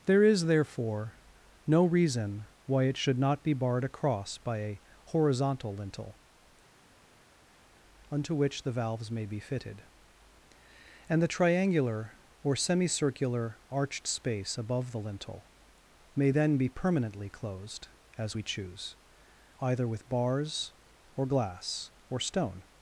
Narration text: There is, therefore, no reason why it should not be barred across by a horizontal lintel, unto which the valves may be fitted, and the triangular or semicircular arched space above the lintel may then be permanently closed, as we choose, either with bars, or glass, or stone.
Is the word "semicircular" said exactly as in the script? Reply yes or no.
yes